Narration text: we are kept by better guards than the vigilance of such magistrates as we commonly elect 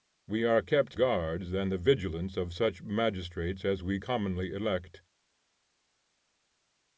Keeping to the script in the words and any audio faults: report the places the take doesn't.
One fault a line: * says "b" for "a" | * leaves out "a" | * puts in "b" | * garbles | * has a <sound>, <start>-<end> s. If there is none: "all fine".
* leaves out "by better"